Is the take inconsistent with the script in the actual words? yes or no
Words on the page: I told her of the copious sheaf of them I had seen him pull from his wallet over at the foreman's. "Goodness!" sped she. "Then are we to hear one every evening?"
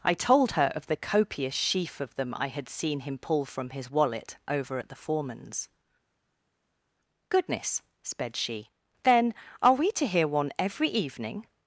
no